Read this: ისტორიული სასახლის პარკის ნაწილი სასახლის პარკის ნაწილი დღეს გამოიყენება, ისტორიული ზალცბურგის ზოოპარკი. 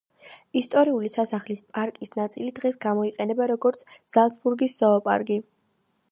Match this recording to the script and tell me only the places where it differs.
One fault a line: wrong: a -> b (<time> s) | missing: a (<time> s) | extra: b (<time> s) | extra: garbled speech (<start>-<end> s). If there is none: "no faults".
missing: სასახლის პარკის ნაწილი (2.5 s)
wrong: ისტორიული -> როგორც (3.5 s)